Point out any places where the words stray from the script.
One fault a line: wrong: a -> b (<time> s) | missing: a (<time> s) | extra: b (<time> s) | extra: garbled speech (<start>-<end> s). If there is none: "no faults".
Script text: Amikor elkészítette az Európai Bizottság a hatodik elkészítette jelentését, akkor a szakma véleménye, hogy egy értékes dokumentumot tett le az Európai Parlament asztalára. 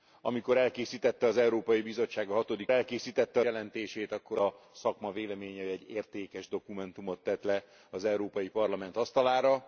no faults